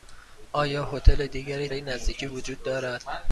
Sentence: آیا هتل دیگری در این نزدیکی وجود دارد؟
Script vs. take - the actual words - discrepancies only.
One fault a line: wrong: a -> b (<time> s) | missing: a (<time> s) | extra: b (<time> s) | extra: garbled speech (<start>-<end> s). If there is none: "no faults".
missing: در (1.7 s)